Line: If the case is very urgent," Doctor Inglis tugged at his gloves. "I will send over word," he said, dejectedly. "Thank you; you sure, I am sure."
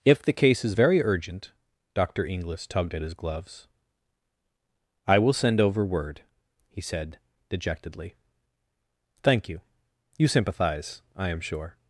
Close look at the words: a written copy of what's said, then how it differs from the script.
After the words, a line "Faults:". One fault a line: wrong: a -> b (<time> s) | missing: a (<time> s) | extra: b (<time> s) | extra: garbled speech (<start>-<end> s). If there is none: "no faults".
If the case is very urgent," Doctor Inglis tugged at his gloves. "I will send over word," he said, dejectedly. "Thank you; you sympathize, I am sure."
Faults:
wrong: sure -> sympathize (10.3 s)